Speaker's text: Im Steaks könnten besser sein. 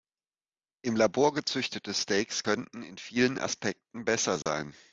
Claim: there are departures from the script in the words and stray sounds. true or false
true